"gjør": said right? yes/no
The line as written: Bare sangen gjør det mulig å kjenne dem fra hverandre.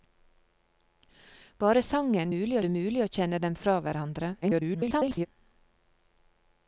no